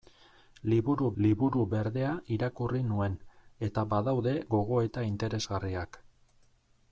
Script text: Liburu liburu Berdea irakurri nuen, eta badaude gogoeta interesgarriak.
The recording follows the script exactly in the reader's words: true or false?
true